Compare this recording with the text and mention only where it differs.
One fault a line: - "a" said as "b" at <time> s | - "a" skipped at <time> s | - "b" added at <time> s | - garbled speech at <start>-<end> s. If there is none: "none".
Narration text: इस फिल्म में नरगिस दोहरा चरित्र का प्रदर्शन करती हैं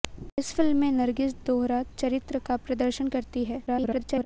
- garbled speech at 3.7-4.3 s